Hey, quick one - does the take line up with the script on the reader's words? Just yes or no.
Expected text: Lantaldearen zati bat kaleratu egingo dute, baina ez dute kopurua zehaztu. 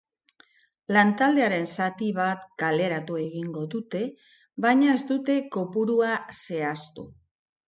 yes